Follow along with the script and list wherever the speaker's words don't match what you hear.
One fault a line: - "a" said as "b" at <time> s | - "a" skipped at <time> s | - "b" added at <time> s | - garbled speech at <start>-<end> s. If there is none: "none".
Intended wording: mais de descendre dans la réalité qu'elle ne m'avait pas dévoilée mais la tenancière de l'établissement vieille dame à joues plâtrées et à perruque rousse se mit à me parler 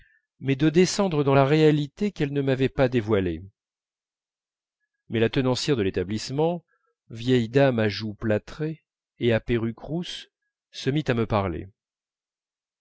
none